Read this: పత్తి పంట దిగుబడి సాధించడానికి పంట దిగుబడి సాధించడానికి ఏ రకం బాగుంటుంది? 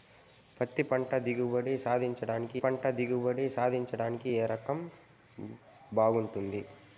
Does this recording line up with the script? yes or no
yes